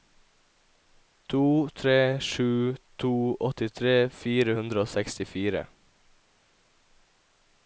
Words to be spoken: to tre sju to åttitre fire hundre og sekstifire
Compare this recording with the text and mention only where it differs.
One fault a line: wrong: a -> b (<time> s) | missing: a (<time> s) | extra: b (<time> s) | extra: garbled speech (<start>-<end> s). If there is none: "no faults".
no faults